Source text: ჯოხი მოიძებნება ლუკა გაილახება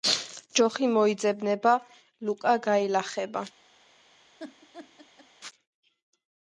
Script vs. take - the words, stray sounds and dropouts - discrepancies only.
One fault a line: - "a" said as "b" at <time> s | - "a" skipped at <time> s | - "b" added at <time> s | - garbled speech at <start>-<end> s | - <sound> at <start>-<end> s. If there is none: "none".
- laugh at 4.4-5.3 s